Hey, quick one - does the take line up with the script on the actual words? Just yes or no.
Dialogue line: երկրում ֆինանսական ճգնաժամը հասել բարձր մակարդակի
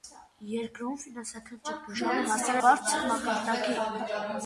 yes